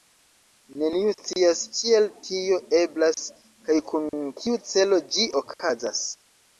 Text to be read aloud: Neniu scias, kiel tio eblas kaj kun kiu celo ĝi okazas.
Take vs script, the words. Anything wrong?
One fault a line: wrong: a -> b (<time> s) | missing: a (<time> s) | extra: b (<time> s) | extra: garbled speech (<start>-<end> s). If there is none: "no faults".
no faults